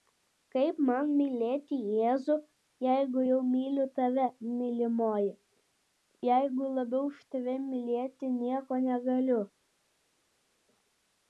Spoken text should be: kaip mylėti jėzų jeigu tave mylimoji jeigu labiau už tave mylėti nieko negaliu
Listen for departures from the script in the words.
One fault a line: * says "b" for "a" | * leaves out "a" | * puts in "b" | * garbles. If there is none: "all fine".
* puts in "man"
* puts in "jau myliu"